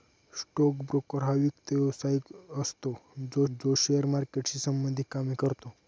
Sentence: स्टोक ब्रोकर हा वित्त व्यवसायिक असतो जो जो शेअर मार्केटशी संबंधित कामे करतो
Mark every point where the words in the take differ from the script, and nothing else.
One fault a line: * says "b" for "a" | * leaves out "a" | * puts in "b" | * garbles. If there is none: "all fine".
all fine